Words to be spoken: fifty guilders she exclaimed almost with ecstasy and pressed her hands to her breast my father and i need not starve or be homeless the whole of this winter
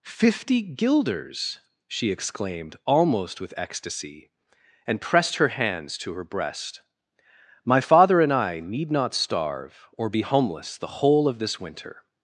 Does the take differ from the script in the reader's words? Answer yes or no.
no